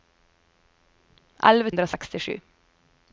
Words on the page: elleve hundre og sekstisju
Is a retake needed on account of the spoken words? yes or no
no